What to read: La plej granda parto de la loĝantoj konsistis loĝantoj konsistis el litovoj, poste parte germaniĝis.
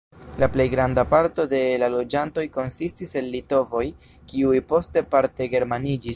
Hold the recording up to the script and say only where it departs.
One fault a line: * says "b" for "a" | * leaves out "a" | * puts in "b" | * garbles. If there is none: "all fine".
* leaves out "loĝantoj konsistis"
* puts in "kiuj"